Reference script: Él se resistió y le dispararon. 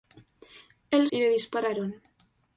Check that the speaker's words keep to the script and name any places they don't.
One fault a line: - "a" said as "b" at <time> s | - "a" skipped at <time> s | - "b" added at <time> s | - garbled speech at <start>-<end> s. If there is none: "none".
- "se resistió" skipped at 1.1 s